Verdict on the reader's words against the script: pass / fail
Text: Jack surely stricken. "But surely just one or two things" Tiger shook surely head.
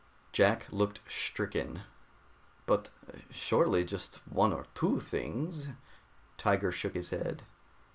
fail